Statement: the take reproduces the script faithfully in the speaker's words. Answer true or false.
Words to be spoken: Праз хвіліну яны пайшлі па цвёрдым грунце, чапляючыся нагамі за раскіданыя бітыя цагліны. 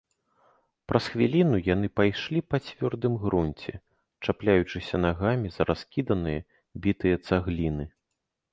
true